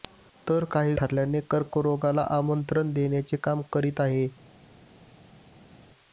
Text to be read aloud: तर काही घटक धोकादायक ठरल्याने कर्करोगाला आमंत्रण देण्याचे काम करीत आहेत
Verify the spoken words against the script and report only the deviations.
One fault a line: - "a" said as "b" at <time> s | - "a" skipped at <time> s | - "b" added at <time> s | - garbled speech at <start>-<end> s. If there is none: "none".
- "घटक धोकादायक" skipped at 0.9 s